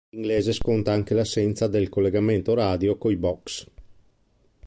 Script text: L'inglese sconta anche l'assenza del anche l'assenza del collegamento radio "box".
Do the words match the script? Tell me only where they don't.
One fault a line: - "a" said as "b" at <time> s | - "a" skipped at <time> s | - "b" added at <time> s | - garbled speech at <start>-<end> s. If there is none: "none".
- "anche l'assenza del" skipped at 1.9 s
- "coi" added at 3.0 s